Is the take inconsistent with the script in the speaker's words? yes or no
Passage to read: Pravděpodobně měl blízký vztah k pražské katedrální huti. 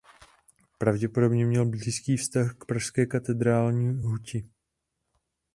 no